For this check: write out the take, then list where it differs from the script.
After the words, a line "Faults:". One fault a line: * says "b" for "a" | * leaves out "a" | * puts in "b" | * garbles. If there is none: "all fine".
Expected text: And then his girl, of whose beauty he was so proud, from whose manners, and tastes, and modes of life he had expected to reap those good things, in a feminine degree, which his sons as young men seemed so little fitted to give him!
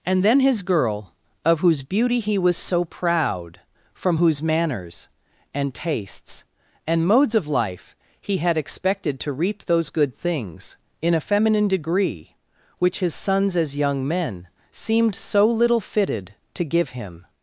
And then his girl, of whose beauty he was so proud, from whose manners, and tastes, and modes of life he had expected to reap those good things, in a feminine degree, which his sons as young men seemed so little fitted to give him!
Faults:
all fine